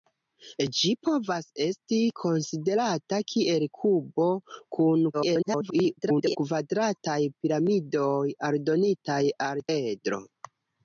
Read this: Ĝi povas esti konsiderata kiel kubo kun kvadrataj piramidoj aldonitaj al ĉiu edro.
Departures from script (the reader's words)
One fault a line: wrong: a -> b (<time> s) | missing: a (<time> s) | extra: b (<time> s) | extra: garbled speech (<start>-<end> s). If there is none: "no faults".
extra: garbled speech (5.1-6.4 s)
missing: ĉiu (9.6 s)